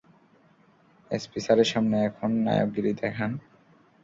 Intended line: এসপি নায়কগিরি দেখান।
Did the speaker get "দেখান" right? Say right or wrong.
right